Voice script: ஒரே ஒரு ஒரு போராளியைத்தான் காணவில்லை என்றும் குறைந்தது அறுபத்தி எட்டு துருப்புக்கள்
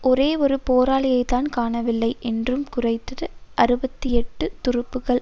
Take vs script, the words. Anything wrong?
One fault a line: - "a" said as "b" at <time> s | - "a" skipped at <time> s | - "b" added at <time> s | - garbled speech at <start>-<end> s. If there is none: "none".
- "ஒரு" skipped at 0.6 s